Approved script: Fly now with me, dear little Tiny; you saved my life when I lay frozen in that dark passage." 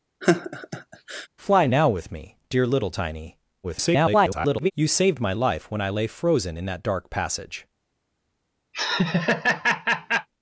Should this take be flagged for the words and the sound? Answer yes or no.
yes